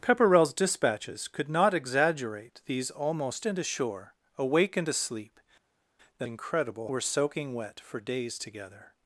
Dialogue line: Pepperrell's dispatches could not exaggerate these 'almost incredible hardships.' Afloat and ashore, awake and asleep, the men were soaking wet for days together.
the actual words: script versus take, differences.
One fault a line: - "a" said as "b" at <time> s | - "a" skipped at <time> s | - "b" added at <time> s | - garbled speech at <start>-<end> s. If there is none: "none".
- "incredible hardships Afloat" skipped at 3.5 s
- "men" said as "incredible" at 6.3 s